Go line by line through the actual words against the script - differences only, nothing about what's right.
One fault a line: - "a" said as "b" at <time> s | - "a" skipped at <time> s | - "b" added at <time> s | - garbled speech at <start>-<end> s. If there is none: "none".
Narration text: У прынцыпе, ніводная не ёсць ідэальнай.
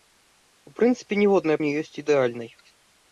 none